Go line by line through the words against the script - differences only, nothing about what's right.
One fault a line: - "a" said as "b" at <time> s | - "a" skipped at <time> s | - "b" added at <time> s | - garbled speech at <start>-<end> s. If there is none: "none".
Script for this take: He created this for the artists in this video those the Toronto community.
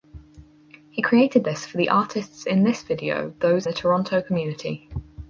none